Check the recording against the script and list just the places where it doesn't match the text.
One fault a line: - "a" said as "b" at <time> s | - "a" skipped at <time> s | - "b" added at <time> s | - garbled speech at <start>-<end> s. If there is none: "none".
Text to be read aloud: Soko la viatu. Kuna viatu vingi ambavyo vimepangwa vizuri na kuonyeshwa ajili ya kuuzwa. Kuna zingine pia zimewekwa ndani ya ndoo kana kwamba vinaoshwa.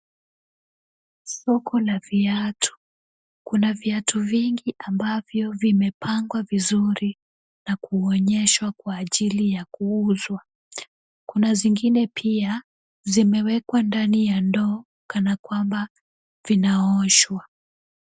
- "kwa" added at 8.8 s